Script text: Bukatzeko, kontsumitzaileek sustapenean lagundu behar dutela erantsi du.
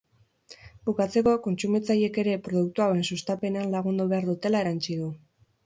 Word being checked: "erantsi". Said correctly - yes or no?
yes